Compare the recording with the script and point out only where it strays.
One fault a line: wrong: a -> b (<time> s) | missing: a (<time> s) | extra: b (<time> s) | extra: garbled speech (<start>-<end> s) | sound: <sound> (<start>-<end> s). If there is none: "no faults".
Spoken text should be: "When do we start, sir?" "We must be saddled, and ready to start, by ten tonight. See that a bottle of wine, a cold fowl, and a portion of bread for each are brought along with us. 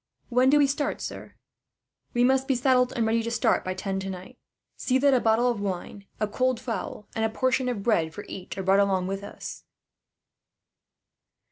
no faults